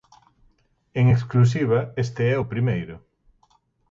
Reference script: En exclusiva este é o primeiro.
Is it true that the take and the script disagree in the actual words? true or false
false